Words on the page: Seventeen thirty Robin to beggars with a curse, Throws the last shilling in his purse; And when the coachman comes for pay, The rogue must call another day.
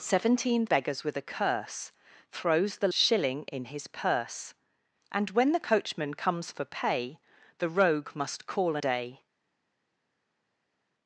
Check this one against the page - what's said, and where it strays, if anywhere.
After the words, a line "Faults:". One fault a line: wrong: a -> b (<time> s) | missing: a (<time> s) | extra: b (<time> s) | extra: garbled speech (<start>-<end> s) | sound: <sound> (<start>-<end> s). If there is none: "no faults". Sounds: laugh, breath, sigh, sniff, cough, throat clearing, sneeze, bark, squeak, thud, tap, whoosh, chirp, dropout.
Seventeen beggars with a curse, Throws the shilling in his purse; And when the coachman comes for pay, The rogue must call day.
Faults:
missing: thirty Robin to (0.7 s)
missing: last (2.9 s)
missing: another (8.8 s)